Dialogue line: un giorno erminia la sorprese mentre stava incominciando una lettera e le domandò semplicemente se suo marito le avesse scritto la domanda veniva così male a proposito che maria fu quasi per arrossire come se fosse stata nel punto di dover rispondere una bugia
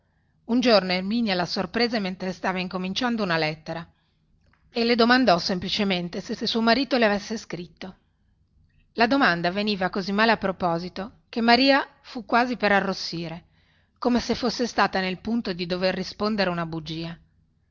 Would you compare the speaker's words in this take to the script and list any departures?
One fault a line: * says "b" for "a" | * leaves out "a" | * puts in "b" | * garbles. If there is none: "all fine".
* puts in "se"